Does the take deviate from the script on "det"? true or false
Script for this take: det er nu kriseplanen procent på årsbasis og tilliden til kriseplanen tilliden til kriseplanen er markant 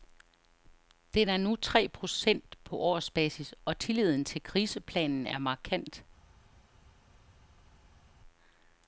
true